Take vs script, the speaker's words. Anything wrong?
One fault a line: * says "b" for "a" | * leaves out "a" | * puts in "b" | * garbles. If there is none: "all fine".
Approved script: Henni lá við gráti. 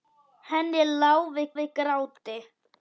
* puts in "við"